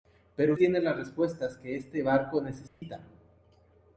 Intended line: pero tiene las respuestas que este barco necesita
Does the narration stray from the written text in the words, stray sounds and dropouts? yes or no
yes